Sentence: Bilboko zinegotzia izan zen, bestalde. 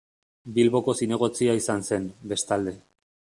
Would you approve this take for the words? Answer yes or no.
yes